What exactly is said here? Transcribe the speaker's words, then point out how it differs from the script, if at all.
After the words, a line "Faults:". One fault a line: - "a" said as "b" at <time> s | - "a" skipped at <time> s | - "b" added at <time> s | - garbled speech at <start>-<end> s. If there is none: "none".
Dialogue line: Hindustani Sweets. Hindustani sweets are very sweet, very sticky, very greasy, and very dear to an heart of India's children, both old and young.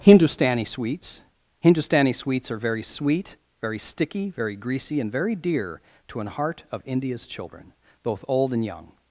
Hindustani Sweets. Hindustani sweets are very sweet, very sticky, very greasy, and very dear to an heart of India's children, both old and young.
Faults:
none